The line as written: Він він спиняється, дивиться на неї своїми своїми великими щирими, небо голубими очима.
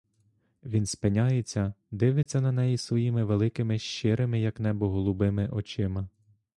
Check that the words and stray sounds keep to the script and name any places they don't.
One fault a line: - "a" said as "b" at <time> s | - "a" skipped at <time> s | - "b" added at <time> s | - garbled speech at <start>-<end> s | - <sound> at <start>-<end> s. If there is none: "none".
- "він" skipped at 0.8 s
- dropout at 2.2-2.3 s
- "своїми" skipped at 3.2 s
- "як" added at 4.4 s